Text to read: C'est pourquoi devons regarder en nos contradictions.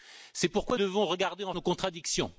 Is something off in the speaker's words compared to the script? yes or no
no